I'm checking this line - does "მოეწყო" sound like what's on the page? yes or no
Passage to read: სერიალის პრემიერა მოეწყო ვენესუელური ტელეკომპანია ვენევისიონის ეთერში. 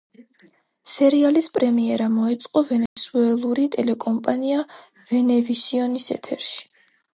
yes